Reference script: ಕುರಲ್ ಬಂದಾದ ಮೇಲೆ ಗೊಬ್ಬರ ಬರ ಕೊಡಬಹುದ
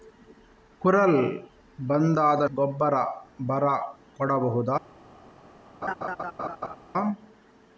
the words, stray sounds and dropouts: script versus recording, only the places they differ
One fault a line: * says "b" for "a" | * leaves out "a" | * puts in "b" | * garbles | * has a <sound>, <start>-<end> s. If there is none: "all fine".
* leaves out "ಮೇಲೆ"
* has a laugh, 5.8-6.8 s